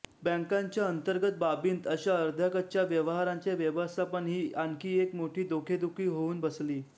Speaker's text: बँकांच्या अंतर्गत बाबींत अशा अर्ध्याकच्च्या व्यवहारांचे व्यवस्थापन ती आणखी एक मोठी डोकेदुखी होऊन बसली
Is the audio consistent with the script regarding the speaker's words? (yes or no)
no